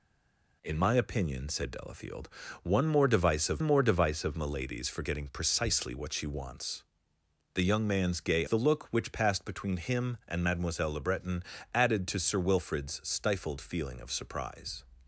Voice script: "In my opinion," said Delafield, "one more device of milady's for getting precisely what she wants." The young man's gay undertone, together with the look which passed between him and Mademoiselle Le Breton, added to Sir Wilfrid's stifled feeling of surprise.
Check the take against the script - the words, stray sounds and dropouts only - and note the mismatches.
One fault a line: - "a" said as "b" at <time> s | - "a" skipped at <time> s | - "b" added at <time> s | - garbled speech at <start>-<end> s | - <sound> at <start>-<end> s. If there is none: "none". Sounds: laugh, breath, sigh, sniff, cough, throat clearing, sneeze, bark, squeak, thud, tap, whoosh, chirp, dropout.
- "more device of" added at 3.6 s
- "undertone together with" skipped at 8.4 s